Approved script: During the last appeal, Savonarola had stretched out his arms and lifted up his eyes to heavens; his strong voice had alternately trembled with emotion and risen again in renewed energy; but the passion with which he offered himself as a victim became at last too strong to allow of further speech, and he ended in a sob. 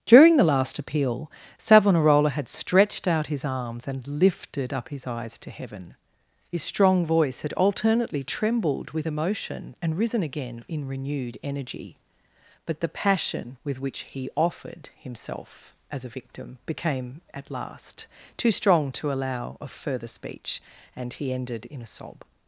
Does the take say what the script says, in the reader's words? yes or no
no